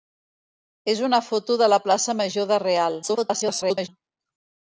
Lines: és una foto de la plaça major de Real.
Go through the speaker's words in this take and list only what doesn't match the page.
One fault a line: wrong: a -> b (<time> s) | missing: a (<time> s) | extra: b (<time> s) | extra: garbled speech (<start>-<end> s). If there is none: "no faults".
extra: garbled speech (3.0-3.9 s)